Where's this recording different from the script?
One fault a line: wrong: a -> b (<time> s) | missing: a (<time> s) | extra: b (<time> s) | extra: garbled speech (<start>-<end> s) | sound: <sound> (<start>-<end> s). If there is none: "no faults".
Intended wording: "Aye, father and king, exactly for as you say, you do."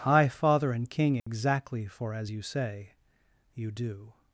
wrong: Aye -> High (0.0 s)
sound: dropout (1.2-1.3 s)